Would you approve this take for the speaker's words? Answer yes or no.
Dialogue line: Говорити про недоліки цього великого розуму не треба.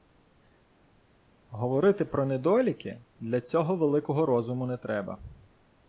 no